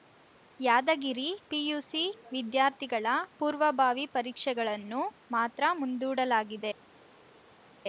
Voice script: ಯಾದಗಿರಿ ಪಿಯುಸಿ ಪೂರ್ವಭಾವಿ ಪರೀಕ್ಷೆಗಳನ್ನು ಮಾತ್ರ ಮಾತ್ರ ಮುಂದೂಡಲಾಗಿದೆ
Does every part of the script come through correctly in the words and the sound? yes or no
no